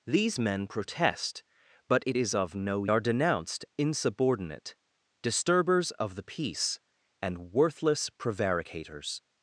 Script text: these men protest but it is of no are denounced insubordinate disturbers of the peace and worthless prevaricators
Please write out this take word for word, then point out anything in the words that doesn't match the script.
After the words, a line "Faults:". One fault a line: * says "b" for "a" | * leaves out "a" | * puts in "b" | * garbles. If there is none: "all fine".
these men protest but it is of no are denounced insubordinate disturbers of the peace and worthless prevaricators
Faults:
all fine